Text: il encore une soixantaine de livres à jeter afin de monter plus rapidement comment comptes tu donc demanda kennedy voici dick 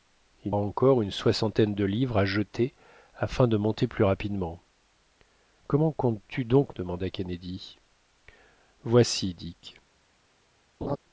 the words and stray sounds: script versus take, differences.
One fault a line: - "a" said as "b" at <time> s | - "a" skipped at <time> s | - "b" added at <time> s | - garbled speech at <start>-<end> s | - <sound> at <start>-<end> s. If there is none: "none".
- laugh at 10.8-11.0 s